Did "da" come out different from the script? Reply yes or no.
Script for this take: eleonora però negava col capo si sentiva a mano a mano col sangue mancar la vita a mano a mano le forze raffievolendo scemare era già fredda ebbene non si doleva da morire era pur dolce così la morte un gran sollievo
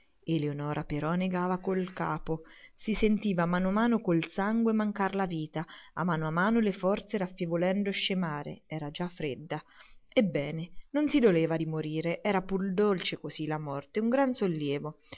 yes